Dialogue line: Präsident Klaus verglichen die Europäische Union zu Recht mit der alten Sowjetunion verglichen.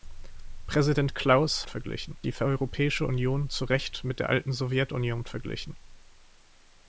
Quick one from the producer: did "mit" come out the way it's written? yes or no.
yes